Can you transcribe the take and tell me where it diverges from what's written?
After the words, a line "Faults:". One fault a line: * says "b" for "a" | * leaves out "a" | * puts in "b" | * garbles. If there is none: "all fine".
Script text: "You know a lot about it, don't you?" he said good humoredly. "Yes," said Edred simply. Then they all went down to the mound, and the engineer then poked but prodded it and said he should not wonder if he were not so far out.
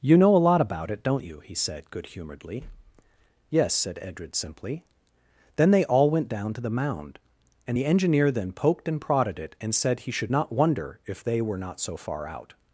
"You know a lot about it, don't you?" he said good humoredly. "Yes," said Edred simply. Then they all went down to the mound, and the engineer then poked and prodded it and said he should not wonder if they were not so far out.
Faults:
* says "and" for "but"
* says "they" for "he"